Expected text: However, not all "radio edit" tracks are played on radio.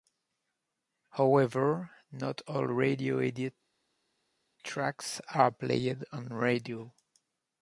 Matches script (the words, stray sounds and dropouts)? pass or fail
pass